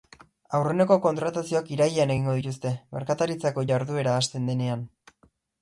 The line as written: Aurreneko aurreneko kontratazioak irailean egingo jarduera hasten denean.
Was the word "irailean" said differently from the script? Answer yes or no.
no